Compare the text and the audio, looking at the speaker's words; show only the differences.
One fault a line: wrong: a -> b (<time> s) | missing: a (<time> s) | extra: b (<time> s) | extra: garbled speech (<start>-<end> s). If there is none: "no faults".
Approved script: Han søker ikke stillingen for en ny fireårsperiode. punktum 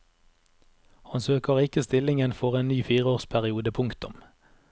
no faults